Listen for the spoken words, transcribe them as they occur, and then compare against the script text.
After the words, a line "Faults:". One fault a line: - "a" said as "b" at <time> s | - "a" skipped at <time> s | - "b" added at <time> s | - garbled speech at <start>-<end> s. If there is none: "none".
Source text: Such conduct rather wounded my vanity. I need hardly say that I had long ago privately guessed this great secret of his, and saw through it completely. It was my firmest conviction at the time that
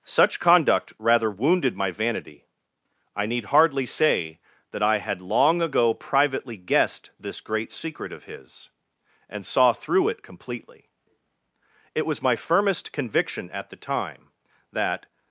Such conduct rather wounded my vanity. I need hardly say that I had long ago privately guessed this great secret of his, and saw through it completely. It was my firmest conviction at the time that
Faults:
none